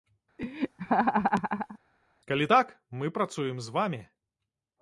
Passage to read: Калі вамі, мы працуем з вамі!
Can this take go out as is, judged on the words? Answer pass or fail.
fail